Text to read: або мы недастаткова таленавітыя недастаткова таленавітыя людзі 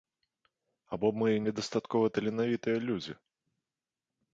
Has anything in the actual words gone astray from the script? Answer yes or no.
yes